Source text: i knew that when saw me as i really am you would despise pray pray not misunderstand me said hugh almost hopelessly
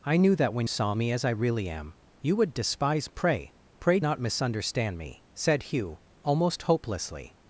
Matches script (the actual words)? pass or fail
pass